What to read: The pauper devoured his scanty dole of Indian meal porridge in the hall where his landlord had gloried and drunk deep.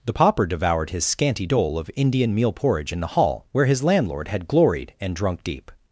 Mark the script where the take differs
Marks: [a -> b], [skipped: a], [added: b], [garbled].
The pauper devoured his scanty dole of Indian meal porridge in the hall where his landlord had gloried and drunk deep.